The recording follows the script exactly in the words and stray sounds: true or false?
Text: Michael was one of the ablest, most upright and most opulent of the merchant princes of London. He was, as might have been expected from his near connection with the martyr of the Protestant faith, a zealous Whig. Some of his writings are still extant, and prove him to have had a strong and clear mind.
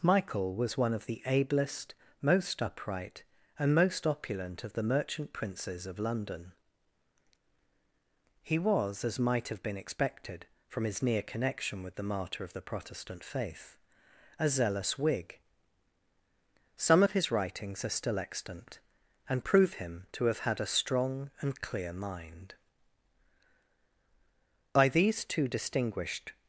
false